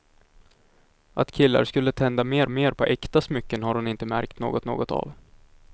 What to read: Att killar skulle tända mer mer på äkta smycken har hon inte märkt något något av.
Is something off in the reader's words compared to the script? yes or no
no